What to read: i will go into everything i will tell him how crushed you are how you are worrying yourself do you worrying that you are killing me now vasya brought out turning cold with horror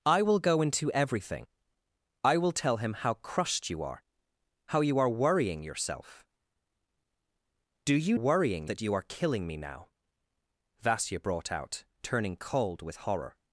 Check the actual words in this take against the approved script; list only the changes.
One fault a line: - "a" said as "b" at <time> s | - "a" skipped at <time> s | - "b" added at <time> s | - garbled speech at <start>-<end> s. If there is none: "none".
none